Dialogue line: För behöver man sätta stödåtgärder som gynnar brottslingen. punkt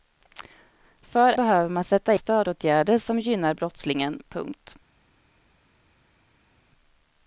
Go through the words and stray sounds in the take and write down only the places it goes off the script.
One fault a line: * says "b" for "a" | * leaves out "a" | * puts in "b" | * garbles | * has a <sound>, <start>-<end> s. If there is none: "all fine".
all fine